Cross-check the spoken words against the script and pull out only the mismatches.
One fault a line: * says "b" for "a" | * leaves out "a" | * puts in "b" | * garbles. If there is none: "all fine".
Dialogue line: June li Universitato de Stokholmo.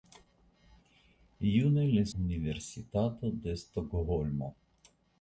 all fine